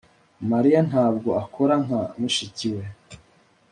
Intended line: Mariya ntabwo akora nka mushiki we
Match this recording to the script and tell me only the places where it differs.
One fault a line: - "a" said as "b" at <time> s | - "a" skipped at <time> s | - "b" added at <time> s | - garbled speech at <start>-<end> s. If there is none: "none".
none